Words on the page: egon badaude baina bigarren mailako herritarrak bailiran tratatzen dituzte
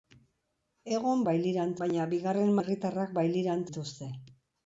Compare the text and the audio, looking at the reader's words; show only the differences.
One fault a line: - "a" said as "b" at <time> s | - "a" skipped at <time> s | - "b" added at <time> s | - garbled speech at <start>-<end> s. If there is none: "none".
- "badaude" said as "bailiran" at 1.3 s
- "mailako" skipped at 2.5 s
- "tratatzen" skipped at 3.7 s